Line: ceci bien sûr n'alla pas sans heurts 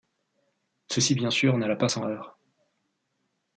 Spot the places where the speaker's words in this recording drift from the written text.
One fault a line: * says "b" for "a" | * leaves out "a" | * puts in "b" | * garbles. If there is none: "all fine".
all fine